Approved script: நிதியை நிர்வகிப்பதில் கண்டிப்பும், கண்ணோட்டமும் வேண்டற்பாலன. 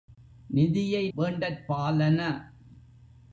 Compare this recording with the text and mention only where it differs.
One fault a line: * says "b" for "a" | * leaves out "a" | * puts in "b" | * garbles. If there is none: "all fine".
* leaves out "நிர்வகிப்பதில் கண்டிப்பும் கண்ணோட்டமும்"